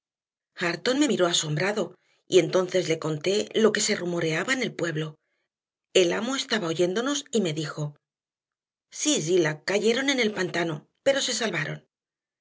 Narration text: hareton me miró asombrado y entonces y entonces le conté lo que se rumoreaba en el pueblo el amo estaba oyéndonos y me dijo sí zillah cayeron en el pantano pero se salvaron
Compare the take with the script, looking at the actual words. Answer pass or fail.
fail